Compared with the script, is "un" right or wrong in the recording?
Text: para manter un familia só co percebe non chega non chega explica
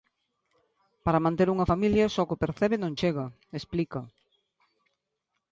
wrong